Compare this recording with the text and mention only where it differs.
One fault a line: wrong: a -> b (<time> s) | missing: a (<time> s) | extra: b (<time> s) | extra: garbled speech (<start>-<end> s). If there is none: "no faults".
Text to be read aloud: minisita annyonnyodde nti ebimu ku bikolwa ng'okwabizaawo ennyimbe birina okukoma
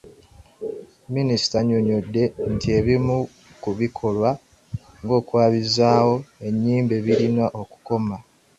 no faults